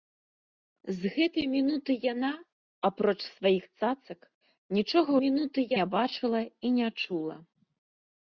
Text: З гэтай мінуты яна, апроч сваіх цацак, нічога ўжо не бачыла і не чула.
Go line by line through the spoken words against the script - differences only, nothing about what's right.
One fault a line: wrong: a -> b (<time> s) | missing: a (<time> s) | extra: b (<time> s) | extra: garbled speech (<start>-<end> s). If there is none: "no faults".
wrong: ўжо -> мінуты (5.2 s)